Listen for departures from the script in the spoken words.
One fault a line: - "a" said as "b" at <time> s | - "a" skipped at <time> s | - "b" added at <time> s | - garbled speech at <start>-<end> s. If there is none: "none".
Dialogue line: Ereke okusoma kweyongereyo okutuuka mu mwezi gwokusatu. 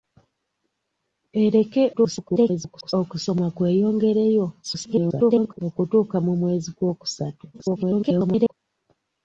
- garbled speech at 1.9-2.9 s
- garbled speech at 4.6-5.6 s
- garbled speech at 7.5-8.5 s